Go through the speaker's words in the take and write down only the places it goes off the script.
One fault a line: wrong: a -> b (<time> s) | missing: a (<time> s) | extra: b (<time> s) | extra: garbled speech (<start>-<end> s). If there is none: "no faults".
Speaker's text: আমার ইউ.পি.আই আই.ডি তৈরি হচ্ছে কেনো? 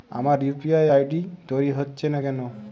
extra: না (2.1 s)